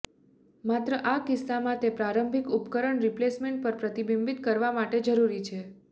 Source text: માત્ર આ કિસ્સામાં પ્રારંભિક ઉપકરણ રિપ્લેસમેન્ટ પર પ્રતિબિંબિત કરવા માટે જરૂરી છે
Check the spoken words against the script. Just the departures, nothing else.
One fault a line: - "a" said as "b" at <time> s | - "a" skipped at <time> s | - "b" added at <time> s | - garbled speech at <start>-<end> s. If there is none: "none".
- "તે" added at 1.8 s